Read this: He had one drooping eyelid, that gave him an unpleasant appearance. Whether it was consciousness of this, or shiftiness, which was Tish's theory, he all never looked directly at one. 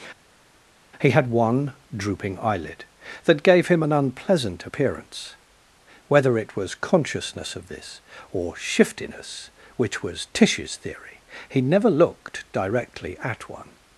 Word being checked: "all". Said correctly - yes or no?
no